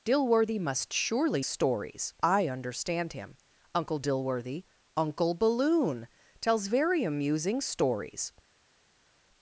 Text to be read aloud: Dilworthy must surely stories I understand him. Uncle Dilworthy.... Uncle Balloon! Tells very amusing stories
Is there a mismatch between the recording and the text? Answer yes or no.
no